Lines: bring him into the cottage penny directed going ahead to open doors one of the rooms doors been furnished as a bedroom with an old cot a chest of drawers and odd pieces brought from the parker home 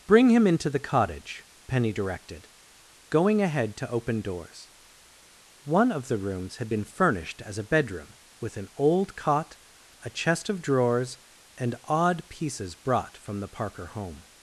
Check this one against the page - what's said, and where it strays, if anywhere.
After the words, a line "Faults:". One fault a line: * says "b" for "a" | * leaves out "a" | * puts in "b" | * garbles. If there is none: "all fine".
bring him into the cottage penny directed going ahead to open doors one of the rooms had been furnished as a bedroom with an old cot a chest of drawers and odd pieces brought from the parker home
Faults:
* says "had" for "doors"